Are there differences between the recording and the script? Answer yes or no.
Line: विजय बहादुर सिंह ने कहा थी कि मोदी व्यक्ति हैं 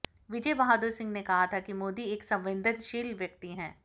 yes